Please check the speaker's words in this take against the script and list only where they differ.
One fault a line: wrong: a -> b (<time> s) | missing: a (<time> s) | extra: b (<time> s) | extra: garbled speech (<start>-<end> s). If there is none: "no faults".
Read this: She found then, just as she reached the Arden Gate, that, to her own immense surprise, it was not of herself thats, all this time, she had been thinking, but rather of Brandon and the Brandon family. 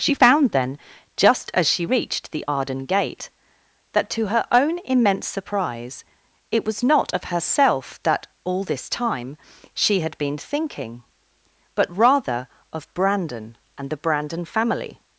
wrong: thats -> that (8.0 s)